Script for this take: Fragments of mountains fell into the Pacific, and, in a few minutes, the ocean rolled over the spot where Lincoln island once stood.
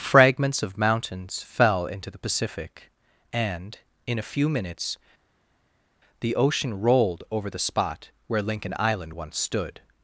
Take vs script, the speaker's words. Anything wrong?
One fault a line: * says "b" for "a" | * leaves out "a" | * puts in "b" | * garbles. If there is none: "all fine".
all fine